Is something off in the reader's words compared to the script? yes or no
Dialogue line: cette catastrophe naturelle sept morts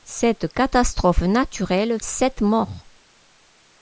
no